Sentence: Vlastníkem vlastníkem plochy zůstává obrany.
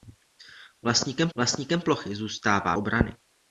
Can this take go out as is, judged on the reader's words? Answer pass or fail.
pass